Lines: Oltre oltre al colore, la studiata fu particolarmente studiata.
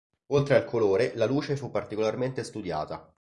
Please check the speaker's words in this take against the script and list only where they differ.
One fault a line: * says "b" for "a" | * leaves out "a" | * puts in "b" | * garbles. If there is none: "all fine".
* leaves out "oltre"
* says "luce" for "studiata"